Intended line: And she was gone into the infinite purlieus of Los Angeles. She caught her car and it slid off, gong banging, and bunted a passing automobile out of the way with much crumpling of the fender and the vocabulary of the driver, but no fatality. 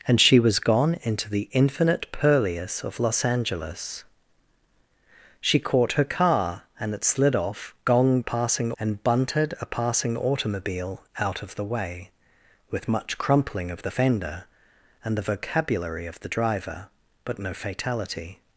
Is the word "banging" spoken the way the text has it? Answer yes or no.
no